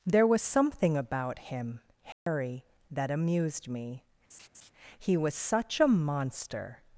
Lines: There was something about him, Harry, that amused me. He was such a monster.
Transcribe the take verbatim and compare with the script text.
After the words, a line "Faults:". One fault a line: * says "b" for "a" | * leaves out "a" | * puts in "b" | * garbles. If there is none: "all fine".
There was something about him, Harry, that amused me. He was such a monster.
Faults:
all fine